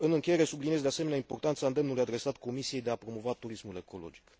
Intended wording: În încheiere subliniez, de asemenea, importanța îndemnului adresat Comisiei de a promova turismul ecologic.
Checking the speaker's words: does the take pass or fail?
pass